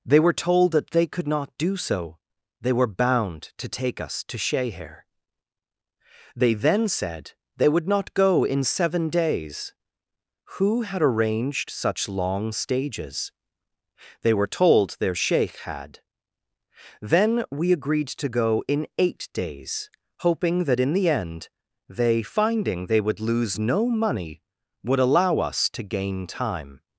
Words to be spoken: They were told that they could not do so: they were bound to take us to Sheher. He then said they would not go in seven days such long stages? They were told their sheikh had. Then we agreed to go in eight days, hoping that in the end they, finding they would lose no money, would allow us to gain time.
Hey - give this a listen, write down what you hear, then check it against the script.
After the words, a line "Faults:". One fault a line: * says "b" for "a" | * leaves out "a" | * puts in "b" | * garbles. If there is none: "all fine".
They were told that they could not do so: they were bound to take us to Sheher. They then said they would not go in seven days who had arranged such long stages? They were told their sheikh had. Then we agreed to go in eight days, hoping that in the end they, finding they would lose no money, would allow us to gain time.
Faults:
* says "They" for "He"
* puts in "who had arranged"